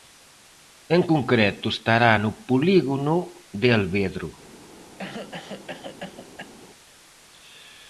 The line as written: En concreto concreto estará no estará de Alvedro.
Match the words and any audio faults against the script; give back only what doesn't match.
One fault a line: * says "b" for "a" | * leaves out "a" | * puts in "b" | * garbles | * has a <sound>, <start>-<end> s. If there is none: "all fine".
* leaves out "concreto"
* says "polígono" for "estará"
* has a cough, 5.0-6.5 s